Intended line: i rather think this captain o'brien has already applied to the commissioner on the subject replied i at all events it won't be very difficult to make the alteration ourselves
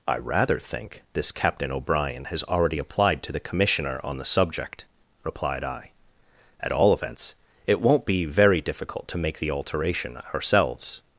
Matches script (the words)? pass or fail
pass